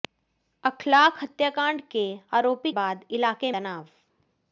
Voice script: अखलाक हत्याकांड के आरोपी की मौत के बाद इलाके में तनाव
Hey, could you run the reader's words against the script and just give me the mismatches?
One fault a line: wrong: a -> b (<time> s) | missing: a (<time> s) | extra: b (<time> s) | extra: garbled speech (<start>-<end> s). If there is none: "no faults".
missing: की मौत के (2.7 s)
missing: में (3.5 s)